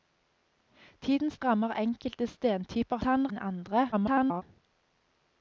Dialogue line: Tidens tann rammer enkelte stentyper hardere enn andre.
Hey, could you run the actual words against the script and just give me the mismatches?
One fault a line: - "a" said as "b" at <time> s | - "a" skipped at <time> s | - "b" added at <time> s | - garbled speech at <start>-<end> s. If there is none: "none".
- "tann" skipped at 1.4 s
- "hardere" said as "tann" at 3.0 s
- garbled speech at 3.9-4.4 s